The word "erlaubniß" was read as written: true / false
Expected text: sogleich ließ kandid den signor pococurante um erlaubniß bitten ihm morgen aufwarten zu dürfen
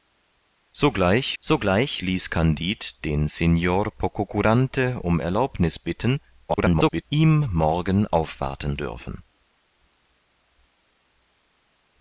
true